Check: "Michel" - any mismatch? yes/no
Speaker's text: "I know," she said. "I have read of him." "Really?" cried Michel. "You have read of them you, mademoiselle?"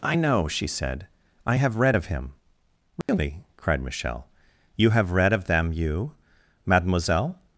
no